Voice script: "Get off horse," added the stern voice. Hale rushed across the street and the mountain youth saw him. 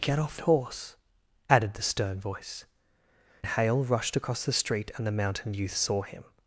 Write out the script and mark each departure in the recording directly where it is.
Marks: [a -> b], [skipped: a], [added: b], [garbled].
"Get off horse," added the stern voice. Hale rushed across the street and the mountain youth saw him.